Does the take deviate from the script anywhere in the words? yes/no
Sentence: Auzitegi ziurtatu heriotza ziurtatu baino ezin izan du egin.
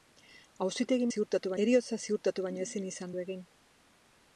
no